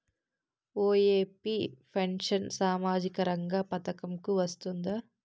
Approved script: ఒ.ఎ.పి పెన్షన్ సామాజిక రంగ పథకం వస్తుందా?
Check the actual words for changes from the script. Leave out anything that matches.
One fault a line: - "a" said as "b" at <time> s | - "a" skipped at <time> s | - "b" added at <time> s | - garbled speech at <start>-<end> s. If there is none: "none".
- "కు" added at 4.2 s